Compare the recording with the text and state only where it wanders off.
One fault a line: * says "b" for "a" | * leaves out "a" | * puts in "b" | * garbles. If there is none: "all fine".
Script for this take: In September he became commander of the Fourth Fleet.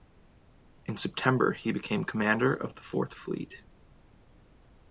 all fine